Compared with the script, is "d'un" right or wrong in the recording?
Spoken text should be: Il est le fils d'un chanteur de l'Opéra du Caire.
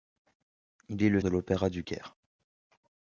wrong